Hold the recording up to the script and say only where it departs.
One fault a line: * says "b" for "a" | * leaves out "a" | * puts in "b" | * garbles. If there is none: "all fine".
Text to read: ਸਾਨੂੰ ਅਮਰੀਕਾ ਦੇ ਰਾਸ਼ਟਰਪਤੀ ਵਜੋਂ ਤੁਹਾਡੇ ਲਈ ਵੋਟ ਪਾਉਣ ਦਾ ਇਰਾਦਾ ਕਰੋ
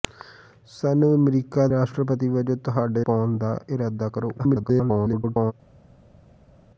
* leaves out "ਦੇ"
* leaves out "ਲਈ ਵੋਟ"
* garbles